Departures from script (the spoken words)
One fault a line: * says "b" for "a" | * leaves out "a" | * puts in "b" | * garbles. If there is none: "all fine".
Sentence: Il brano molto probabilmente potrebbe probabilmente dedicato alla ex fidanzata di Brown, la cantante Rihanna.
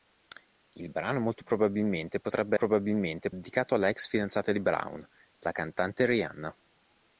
all fine